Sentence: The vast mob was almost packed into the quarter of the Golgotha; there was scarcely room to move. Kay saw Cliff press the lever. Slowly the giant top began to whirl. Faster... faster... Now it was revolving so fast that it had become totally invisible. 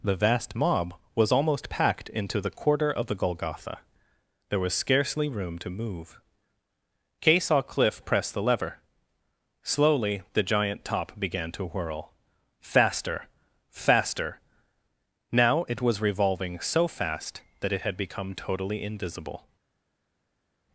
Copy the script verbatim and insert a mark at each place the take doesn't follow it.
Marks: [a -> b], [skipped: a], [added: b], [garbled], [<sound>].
The vast mob was almost packed into the quarter of the Golgotha; there was scarcely room to move. Kay saw Cliff press the lever. Slowly the giant top began to whirl. Faster... faster... Now it was revolving so fast that it had become totally invisible.